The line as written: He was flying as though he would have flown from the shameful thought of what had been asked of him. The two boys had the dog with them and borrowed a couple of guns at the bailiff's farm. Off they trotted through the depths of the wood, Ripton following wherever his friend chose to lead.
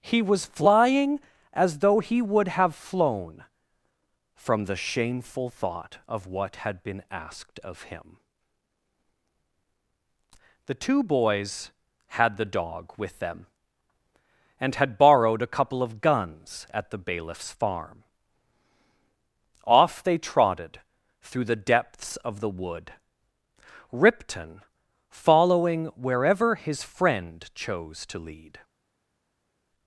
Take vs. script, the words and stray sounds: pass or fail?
fail